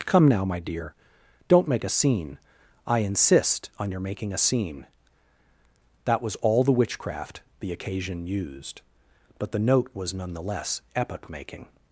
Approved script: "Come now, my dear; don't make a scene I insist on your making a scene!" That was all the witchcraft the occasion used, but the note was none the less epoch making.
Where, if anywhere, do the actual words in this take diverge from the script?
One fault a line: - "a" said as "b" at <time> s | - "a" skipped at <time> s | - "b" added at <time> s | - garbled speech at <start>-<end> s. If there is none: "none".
none